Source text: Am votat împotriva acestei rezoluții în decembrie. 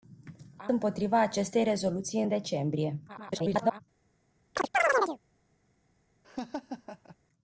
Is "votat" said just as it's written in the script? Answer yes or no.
no